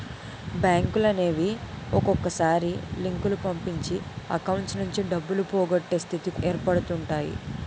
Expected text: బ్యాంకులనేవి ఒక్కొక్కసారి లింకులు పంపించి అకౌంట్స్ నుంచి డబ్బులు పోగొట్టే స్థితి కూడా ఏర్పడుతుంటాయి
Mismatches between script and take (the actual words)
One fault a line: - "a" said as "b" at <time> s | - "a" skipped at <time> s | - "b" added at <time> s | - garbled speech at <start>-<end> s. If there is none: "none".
- "కూడా" skipped at 6.3 s